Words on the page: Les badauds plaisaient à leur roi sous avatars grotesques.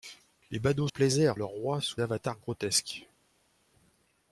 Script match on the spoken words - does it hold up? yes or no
yes